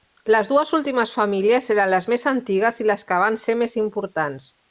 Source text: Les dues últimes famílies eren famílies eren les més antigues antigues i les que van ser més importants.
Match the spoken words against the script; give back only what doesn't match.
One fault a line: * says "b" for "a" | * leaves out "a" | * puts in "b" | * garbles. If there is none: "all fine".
* leaves out "famílies eren"
* leaves out "antigues"